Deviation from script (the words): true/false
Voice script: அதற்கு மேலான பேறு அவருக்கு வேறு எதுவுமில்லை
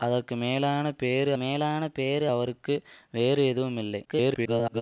true